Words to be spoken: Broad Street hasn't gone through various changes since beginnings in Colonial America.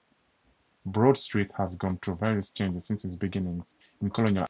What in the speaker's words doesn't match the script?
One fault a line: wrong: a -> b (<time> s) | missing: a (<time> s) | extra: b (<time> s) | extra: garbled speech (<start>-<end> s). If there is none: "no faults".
wrong: hasn't -> has (1.6 s)
extra: its (3.0 s)